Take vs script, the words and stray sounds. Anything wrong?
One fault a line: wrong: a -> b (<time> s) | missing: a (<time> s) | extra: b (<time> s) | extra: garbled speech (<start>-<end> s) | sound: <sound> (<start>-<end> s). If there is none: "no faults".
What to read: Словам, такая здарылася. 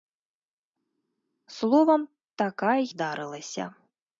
no faults